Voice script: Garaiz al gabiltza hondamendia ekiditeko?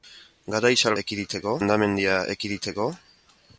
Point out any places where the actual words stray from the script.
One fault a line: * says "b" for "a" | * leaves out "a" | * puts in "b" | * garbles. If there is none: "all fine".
* says "ekiditeko" for "gabiltza"